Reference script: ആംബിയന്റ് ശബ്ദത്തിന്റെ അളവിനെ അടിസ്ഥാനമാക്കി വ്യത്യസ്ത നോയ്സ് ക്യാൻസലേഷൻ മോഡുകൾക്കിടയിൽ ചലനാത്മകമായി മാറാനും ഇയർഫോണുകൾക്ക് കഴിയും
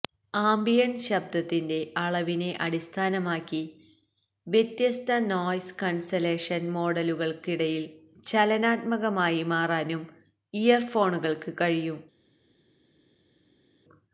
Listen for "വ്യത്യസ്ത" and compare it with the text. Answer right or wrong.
right